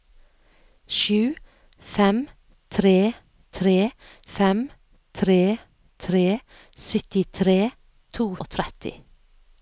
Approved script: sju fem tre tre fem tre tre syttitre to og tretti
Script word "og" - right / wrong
right